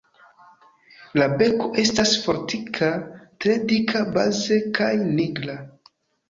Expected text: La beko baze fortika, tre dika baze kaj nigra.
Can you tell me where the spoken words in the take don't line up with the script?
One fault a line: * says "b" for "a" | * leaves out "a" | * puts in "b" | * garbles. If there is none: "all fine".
* says "estas" for "baze"